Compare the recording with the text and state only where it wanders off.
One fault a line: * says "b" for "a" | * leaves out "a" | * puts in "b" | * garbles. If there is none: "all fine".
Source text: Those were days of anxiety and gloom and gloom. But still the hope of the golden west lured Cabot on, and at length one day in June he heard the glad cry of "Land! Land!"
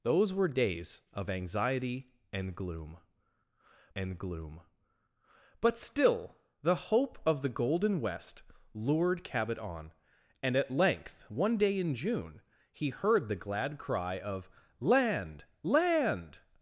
all fine